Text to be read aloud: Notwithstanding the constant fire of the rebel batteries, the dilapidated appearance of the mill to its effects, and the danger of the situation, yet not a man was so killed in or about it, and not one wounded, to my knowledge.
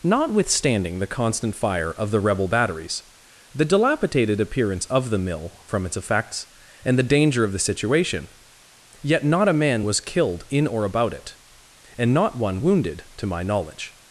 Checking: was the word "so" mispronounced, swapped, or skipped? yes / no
yes